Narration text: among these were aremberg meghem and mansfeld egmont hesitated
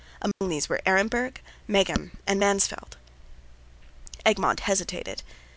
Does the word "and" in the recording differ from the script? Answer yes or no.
no